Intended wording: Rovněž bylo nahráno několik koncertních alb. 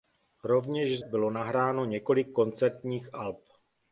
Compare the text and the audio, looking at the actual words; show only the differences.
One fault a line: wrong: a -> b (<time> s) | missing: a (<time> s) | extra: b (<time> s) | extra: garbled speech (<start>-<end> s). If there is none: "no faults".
no faults